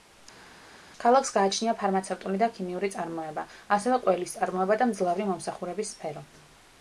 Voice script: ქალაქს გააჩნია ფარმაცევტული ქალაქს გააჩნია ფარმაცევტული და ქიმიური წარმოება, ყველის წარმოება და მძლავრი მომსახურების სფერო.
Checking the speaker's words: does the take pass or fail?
fail